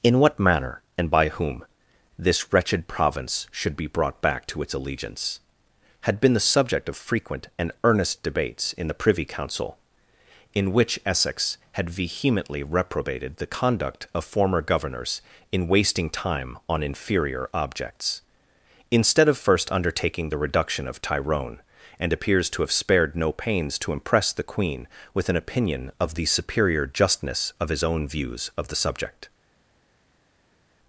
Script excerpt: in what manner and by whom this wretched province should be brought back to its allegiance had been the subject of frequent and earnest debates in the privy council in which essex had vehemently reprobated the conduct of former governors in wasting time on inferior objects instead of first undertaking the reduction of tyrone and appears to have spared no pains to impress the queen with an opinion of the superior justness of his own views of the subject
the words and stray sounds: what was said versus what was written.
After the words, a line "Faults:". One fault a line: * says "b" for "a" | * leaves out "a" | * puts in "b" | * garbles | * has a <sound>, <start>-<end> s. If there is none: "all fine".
in what manner and by whom this wretched province should be brought back to its allegiance had been the subject of frequent and earnest debates in the privy council in which essex had vehemently reprobated the conduct of former governors in wasting time on inferior objects instead of first undertaking the reduction of tyrone and appears to have spared no pains to impress the queen with an opinion of the superior justness of his own views of the subject
Faults:
all fine